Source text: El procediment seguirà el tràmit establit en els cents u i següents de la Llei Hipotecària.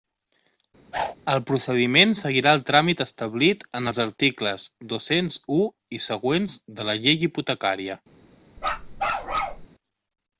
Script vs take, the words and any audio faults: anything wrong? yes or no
yes